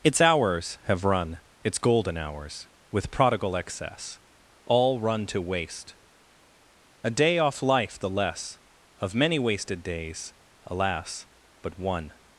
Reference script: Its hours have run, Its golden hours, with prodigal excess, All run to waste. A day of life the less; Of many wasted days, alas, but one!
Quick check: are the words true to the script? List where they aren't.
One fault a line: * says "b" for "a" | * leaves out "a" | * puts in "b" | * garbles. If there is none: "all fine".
* says "off" for "of"